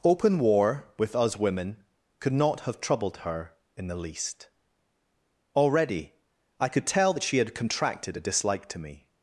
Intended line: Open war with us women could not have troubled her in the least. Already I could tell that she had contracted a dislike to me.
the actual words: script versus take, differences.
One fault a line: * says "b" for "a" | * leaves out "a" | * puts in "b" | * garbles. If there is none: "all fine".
all fine